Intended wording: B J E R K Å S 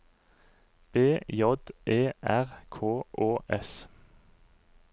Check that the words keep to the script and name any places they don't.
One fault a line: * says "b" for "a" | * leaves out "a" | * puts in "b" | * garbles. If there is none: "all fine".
all fine